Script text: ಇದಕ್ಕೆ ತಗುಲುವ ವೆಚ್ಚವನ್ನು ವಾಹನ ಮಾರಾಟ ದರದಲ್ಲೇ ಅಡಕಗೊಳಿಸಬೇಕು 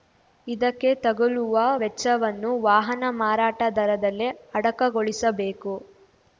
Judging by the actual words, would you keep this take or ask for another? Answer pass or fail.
pass